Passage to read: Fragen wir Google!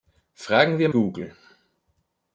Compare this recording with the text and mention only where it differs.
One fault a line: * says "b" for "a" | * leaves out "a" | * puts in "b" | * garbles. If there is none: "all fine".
all fine